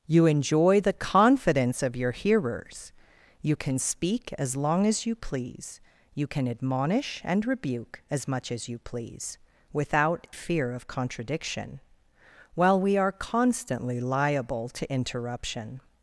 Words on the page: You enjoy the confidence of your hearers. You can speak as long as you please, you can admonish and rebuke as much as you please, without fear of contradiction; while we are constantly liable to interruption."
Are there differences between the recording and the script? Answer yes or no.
no